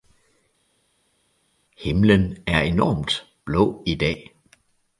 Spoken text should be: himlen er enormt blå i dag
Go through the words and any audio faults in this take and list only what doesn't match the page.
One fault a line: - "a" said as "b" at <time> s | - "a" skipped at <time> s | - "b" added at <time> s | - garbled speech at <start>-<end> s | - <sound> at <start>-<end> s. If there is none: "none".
none